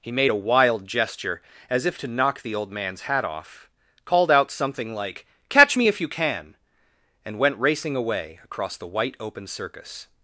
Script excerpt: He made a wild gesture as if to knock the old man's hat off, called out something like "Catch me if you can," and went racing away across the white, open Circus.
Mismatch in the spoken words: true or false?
false